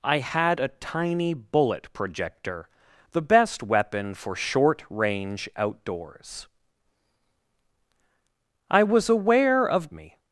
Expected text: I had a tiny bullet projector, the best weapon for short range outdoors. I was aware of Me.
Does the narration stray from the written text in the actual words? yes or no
no